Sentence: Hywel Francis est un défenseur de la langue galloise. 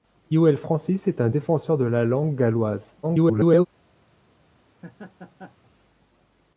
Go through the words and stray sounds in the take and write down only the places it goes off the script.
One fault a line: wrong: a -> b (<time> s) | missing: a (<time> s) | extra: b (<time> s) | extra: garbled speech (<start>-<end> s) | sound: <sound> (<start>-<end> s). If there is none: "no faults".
extra: garbled speech (3.0-3.7 s)
sound: laugh (4.7-5.7 s)